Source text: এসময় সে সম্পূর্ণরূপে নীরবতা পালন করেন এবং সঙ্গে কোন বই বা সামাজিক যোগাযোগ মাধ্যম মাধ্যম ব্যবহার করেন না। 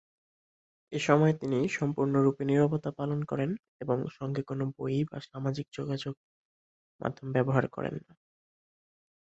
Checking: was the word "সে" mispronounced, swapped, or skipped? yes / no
yes